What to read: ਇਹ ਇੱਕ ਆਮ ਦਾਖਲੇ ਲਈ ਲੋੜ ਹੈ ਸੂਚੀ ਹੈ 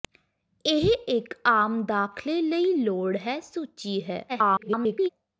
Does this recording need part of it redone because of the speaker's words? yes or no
yes